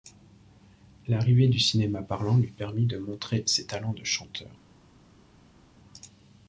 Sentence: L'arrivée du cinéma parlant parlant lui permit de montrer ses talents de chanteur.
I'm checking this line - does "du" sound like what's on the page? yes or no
yes